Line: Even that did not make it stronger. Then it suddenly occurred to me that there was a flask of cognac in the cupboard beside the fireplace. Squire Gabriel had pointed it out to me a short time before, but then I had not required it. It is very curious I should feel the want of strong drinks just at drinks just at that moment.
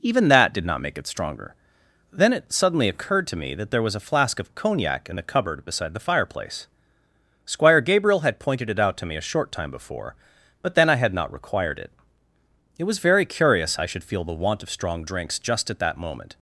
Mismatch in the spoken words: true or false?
true